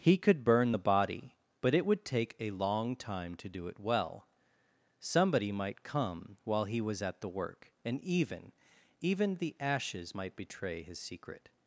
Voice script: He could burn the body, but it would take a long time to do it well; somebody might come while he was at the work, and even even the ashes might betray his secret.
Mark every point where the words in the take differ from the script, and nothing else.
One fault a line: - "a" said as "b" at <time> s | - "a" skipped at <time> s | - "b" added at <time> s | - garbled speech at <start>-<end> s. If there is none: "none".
none